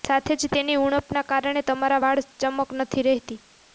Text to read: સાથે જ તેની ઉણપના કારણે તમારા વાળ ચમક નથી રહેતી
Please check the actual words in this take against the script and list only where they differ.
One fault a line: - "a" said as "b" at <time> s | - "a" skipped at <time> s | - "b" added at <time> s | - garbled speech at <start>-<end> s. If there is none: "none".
none